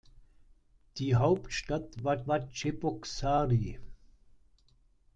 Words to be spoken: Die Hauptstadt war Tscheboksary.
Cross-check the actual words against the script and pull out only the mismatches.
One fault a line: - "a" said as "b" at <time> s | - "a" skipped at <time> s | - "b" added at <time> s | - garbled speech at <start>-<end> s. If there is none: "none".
- "war" added at 2.3 s